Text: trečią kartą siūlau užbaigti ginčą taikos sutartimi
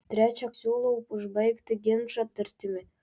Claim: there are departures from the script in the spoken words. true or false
true